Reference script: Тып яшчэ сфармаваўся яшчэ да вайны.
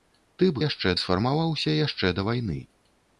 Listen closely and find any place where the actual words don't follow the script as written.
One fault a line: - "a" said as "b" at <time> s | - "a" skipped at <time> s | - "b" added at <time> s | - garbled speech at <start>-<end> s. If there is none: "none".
none